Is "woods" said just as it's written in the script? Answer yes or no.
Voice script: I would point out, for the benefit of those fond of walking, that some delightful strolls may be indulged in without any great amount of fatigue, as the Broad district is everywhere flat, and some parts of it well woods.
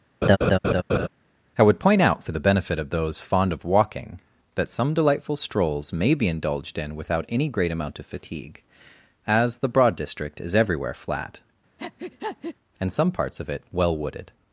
no